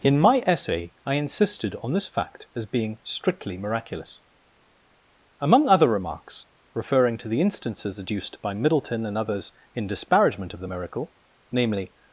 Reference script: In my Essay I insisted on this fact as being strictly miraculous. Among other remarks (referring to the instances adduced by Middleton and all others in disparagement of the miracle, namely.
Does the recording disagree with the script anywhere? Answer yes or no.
yes